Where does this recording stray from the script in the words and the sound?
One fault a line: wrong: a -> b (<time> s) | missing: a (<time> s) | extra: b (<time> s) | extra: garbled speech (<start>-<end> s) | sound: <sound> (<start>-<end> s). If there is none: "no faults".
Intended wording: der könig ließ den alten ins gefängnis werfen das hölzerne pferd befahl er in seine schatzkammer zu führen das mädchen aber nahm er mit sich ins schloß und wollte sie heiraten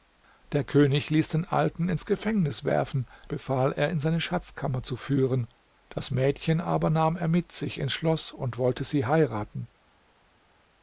missing: das hölzerne pferd (3.0 s)